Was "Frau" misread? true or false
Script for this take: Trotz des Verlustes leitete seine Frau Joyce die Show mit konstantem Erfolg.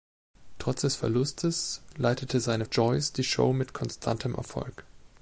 true